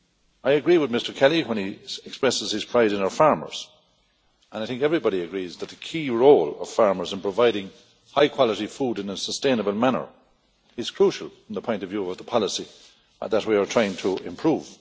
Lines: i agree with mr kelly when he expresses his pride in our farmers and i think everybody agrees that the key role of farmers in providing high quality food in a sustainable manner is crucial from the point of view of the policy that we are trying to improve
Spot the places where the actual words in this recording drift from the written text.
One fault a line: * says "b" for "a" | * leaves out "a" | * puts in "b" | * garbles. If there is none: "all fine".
all fine